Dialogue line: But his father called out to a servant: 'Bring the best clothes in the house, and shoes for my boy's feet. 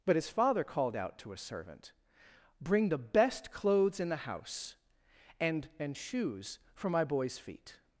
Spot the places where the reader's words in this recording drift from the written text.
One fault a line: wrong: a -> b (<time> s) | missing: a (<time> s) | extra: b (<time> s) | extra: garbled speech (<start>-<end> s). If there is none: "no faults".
extra: and (5.8 s)